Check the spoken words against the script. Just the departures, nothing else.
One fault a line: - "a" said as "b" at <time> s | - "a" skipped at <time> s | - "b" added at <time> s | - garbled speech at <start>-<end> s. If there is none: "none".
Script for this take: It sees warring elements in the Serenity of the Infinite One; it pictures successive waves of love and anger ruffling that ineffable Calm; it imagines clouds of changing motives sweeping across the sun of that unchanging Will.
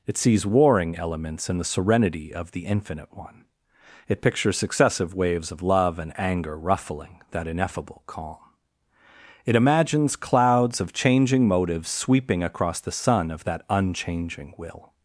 none